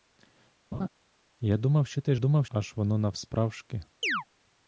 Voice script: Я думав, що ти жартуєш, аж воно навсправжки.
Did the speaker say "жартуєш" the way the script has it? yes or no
no